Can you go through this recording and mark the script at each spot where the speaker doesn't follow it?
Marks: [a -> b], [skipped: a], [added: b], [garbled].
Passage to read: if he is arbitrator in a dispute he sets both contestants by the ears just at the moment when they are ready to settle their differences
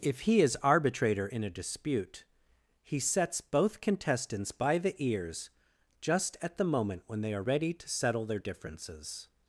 if he is arbitrator in a dispute he sets both contestants by the ears just at the moment when they are ready to settle their differences